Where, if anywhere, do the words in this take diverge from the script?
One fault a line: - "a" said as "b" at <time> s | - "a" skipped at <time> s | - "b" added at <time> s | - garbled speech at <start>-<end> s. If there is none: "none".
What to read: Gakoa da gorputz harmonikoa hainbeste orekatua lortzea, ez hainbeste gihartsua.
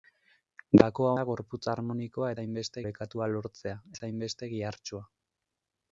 none